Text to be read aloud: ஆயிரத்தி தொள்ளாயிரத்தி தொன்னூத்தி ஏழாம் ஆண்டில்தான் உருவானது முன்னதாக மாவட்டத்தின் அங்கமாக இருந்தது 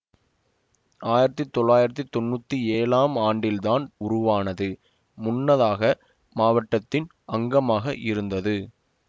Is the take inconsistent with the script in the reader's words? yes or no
no